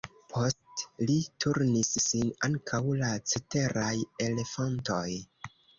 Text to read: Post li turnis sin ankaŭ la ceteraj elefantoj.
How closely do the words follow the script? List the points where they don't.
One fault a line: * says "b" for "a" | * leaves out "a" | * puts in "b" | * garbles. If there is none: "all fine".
all fine